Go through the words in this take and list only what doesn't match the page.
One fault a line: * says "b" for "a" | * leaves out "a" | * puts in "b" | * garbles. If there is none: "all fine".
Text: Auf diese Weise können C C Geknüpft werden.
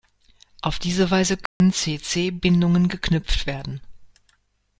* puts in "Bindungen"